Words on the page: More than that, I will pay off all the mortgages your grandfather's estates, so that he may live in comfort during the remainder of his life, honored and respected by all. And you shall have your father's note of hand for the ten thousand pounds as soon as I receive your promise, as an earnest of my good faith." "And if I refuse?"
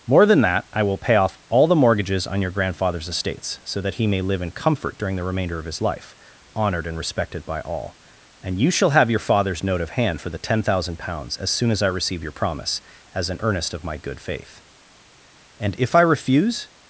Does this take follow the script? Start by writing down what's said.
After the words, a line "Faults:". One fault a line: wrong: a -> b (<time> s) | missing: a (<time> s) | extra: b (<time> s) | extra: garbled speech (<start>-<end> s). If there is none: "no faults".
More than that, I will pay off all the mortgages on your grandfather's estates, so that he may live in comfort during the remainder of his life, honored and respected by all. And you shall have your father's note of hand for the ten thousand pounds as soon as I receive your promise, as an earnest of my good faith." "And if I refuse?"
Faults:
extra: on (2.3 s)